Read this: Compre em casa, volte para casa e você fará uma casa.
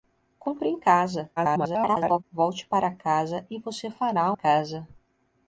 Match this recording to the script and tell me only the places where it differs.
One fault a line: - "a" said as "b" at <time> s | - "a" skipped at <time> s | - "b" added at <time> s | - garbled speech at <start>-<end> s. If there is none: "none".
- garbled speech at 1.4-2.2 s
- "uma" skipped at 4.3 s